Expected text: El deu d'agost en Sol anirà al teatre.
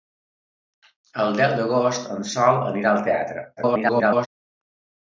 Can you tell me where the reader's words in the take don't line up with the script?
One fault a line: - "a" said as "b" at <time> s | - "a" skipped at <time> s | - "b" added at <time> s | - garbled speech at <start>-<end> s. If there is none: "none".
- garbled speech at 3.6-4.3 s